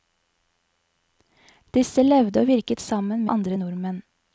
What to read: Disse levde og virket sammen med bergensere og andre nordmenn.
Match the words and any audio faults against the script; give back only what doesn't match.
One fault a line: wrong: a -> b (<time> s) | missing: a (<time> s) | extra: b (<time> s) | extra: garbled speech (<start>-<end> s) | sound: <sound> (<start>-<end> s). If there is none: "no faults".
missing: med bergensere og (3.2 s)